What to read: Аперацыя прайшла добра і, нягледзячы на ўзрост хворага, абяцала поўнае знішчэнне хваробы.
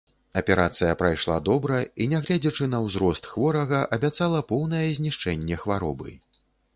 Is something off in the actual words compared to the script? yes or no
no